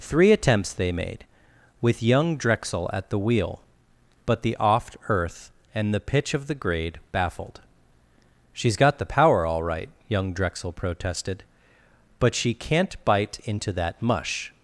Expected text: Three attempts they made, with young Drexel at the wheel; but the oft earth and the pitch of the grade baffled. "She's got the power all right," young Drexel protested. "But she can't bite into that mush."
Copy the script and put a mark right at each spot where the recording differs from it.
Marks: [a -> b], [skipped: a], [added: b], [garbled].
Three attempts they made, with young Drexel at the wheel; but the oft earth and the pitch of the grade baffled. "She's got the power all right," young Drexel protested. "But she can't bite into that mush."